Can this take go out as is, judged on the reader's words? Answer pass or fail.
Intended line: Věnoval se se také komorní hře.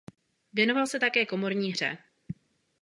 fail